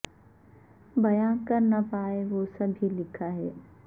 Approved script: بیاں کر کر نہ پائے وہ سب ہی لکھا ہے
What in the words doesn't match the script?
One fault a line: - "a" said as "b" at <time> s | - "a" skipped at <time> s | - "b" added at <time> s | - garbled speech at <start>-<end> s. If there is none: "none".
- "کر" skipped at 1.6 s